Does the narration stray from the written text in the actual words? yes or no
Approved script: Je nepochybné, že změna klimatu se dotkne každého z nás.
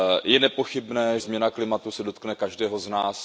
yes